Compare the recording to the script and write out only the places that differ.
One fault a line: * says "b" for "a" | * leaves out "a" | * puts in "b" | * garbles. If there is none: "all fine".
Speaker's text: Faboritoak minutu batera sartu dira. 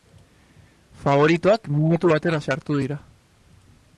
all fine